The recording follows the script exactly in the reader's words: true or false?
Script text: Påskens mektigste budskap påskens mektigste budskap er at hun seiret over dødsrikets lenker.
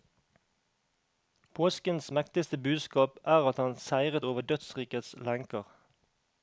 false